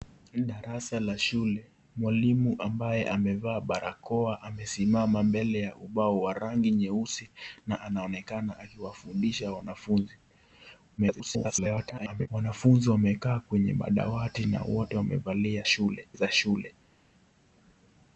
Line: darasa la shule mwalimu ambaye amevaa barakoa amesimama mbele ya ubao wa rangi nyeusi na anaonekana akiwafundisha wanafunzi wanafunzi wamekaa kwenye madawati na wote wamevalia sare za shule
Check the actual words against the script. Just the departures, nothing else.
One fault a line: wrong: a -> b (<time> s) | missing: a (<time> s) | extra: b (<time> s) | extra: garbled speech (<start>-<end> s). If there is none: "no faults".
extra: garbled speech (11.0-12.3 s)
wrong: sare -> shule (15.6 s)